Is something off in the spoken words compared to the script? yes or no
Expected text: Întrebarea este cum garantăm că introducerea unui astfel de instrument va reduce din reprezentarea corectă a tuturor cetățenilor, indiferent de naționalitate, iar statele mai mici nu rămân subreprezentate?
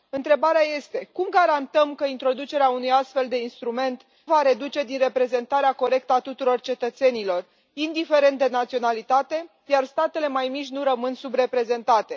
no